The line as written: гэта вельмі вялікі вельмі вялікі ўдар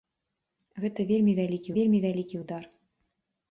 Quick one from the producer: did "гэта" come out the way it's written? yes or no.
yes